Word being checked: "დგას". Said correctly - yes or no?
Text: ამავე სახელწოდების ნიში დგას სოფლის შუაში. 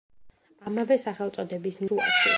no